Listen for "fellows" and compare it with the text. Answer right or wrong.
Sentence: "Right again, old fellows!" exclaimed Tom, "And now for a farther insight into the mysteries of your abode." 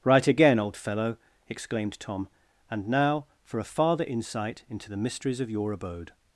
wrong